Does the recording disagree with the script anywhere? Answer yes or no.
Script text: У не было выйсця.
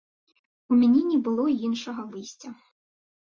yes